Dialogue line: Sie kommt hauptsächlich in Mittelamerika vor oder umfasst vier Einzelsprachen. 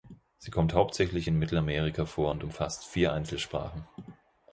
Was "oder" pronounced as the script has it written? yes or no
no